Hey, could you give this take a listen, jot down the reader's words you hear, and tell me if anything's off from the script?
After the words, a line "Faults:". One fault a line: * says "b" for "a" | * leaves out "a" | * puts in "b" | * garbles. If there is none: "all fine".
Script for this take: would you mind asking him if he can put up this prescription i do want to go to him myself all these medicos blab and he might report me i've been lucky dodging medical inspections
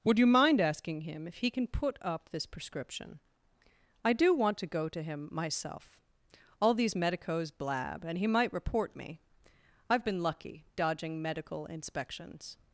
would you mind asking him if he can put up this prescription i do want to go to him myself all these medicos blab and he might report me i've been lucky dodging medical inspections
Faults:
all fine